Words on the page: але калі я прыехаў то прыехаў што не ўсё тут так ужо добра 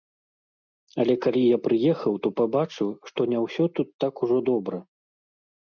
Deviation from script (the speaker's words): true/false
true